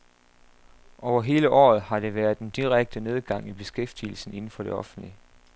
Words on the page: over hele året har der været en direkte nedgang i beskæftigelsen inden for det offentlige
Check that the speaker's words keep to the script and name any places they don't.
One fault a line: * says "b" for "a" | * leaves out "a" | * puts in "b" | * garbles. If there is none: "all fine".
all fine